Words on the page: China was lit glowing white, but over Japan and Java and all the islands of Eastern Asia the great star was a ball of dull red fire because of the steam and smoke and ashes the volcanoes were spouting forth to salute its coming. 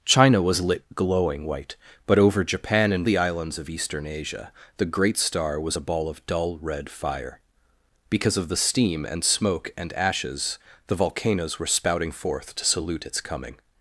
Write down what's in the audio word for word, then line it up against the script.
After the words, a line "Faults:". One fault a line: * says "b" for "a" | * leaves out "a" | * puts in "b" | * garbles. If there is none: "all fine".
China was lit glowing white, but over Japan and The islands of Eastern Asia the great star was a ball of dull red fire because of the steam and smoke and ashes the volcanoes were spouting forth to salute its coming.
Faults:
* leaves out "Java and all"